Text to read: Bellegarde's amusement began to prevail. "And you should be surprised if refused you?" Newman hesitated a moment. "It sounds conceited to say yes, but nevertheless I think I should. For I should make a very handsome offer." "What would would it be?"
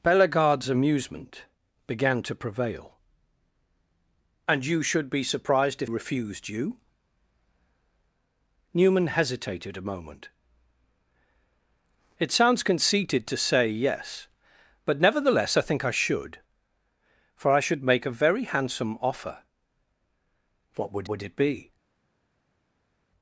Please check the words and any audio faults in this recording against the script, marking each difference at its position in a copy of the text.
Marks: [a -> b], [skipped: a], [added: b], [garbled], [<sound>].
Bellegarde's amusement began to prevail. "And you should be surprised if refused you?" Newman hesitated a moment. "It sounds conceited to say yes, but nevertheless I think I should. For I should make a very handsome offer." "What would would it be?"